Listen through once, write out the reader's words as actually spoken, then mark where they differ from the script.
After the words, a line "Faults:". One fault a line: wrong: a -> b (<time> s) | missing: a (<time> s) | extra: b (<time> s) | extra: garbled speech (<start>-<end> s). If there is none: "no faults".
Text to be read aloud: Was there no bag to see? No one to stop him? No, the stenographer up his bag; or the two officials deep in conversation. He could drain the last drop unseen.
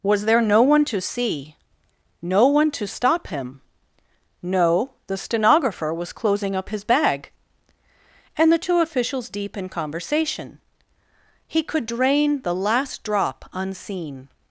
Was there no one to see? No one to stop him? No, the stenographer was closing up his bag; and the two officials deep in conversation. He could drain the last drop unseen.
Faults:
wrong: bag -> one (0.6 s)
extra: was closing (5.9 s)
wrong: or -> and (8.3 s)